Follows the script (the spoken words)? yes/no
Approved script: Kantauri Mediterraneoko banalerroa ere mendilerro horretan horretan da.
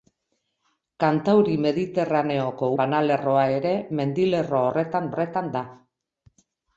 yes